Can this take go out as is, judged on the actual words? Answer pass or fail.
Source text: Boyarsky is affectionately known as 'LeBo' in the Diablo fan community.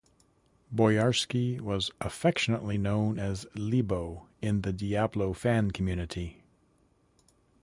fail